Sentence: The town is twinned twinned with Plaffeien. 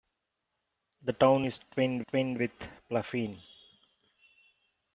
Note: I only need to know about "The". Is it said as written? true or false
true